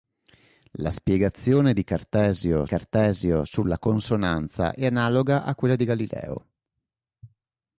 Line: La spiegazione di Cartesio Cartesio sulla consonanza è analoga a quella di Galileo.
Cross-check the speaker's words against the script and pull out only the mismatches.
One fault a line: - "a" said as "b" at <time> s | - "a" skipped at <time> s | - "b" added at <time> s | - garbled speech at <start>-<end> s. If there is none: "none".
none